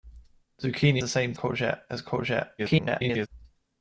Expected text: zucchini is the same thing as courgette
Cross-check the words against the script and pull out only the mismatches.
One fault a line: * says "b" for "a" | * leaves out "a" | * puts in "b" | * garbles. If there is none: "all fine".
* leaves out "is"
* says "courgette" for "thing"
* garbles